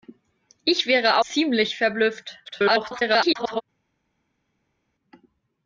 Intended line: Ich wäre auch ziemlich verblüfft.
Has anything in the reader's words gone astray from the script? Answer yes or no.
yes